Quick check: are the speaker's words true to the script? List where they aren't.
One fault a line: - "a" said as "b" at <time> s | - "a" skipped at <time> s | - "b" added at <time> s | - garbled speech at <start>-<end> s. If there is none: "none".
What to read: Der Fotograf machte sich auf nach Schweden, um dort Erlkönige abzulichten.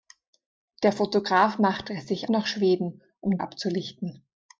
- "auf" skipped at 2.3 s
- "dort Erlkönige" skipped at 3.4 s